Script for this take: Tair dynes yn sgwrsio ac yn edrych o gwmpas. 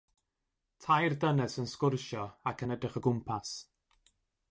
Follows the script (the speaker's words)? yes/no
yes